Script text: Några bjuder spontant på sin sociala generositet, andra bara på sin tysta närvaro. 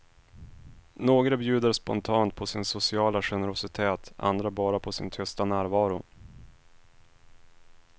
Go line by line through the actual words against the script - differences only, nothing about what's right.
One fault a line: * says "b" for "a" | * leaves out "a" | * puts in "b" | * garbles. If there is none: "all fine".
all fine